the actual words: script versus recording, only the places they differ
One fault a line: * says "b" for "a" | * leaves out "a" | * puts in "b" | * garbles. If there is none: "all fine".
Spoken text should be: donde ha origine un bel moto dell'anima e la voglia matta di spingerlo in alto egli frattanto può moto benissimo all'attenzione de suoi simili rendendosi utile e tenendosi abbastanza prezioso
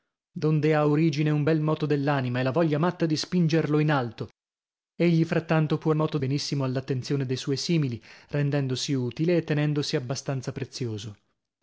all fine